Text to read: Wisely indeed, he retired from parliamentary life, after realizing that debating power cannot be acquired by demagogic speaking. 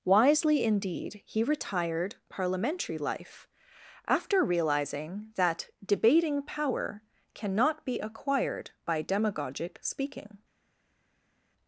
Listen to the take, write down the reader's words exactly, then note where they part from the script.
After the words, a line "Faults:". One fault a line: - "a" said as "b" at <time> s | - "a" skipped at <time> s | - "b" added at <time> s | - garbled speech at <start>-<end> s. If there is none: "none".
Wisely indeed, he retired parliamentary life, after realizing that debating power cannot be acquired by demagogic speaking.
Faults:
- "from" skipped at 2.1 s